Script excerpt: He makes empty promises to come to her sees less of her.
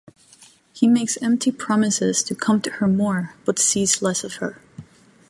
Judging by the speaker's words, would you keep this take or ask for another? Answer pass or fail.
fail